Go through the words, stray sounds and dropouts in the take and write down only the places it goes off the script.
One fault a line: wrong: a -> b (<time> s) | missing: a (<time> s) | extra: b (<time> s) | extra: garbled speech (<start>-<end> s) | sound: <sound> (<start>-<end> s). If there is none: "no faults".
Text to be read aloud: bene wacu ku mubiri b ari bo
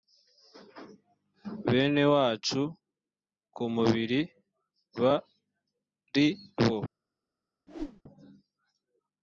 sound: whoosh (7.7-8.0 s)